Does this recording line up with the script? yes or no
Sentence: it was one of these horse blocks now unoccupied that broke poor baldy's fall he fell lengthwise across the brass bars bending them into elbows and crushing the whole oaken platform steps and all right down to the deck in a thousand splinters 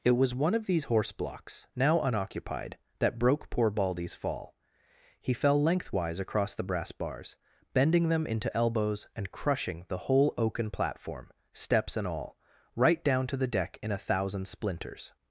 yes